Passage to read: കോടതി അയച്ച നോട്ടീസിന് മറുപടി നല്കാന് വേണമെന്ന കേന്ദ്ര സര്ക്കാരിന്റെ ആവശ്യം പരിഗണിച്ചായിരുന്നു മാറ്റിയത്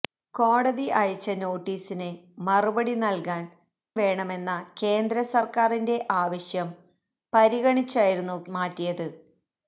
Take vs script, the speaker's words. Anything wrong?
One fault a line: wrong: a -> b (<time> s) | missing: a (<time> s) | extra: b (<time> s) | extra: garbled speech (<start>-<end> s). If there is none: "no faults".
no faults